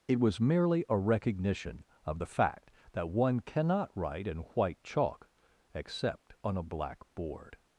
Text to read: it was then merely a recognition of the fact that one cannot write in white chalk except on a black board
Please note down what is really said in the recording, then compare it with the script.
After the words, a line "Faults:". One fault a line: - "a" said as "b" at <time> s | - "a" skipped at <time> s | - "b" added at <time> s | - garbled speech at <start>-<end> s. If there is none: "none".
it was merely a recognition of the fact that one cannot write in white chalk except on a black board
Faults:
- "then" skipped at 0.4 s